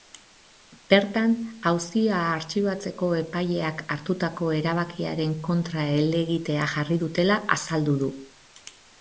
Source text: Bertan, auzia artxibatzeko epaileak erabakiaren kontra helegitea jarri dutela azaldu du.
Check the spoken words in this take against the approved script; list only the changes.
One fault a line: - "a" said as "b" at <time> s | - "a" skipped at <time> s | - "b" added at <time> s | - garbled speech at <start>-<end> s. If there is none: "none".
- "hartutako" added at 4.0 s